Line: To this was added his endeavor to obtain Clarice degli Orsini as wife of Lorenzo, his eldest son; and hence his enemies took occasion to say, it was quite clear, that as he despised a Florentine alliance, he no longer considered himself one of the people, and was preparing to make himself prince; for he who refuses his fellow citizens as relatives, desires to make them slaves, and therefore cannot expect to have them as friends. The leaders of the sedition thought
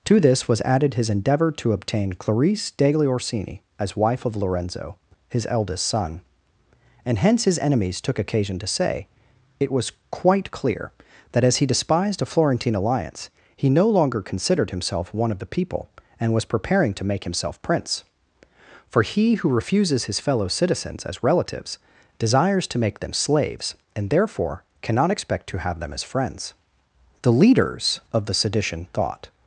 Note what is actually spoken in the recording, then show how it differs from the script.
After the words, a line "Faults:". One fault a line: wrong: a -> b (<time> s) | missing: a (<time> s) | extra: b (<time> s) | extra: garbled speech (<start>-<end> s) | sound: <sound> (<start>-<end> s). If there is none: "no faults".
To this was added his endeavor to obtain Clarice degli Orsini as wife of Lorenzo, his eldest son; and hence his enemies took occasion to say, it was quite clear, that as he despised a Florentine alliance, he no longer considered himself one of the people, and was preparing to make himself prince; for he who refuses his fellow citizens as relatives, desires to make them slaves, and therefore cannot expect to have them as friends. The leaders of the sedition thought
Faults:
no faults